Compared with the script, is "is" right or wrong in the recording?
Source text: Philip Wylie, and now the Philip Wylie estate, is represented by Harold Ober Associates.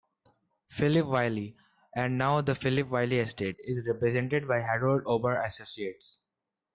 right